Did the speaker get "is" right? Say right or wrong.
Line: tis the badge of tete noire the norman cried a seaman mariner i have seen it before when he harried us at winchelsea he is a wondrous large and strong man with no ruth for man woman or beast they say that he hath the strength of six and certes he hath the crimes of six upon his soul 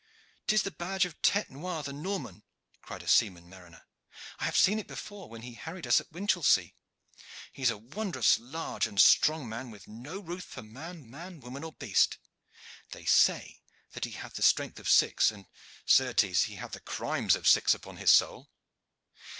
right